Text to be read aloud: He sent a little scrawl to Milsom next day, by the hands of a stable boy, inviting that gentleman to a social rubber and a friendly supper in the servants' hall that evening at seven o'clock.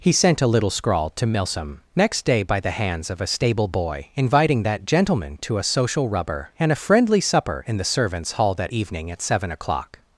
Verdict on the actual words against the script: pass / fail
pass